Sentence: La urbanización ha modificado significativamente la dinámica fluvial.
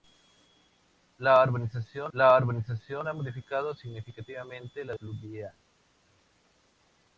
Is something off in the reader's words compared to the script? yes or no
yes